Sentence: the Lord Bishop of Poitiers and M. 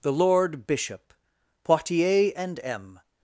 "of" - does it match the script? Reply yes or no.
no